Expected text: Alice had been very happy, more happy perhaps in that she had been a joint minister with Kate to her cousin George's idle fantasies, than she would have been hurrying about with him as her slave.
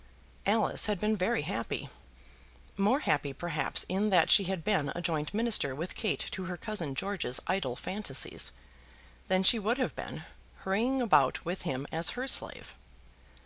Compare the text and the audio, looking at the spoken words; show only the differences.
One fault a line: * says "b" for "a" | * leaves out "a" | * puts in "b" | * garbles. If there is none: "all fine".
all fine